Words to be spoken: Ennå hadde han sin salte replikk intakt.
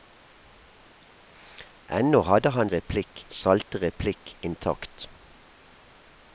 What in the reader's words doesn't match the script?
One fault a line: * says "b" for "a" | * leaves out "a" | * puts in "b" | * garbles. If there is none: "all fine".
* says "replikk" for "sin"